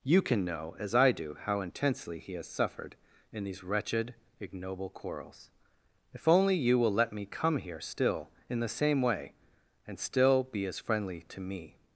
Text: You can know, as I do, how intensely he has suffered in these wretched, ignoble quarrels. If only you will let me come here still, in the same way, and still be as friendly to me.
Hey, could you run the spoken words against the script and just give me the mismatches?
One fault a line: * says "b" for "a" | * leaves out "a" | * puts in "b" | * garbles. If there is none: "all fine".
all fine